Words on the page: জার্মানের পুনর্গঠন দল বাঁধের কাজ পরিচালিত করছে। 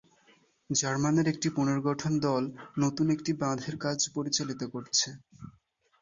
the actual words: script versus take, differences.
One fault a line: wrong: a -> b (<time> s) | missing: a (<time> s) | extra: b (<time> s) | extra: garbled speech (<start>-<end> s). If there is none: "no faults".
extra: একটি (1.3 s)
extra: নতুন একটি (2.8 s)